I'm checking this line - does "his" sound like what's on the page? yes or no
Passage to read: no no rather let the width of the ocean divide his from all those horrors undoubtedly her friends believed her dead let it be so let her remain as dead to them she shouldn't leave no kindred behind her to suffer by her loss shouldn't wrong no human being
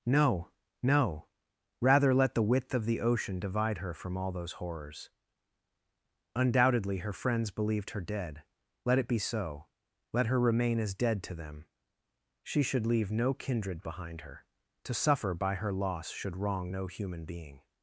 no